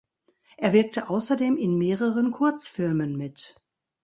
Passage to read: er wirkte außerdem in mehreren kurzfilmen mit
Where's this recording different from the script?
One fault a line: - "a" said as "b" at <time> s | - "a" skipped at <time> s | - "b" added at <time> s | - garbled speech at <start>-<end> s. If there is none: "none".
none